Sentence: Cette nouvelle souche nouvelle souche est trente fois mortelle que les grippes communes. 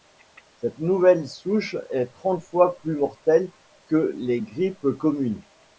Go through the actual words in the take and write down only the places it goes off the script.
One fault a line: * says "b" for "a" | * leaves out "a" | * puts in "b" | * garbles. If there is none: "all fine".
* leaves out "nouvelle souche"
* puts in "plus"